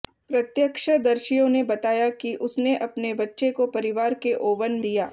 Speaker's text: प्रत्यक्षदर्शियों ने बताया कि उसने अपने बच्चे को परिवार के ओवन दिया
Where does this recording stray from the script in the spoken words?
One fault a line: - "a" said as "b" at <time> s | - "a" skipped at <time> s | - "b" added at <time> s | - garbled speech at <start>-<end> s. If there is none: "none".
none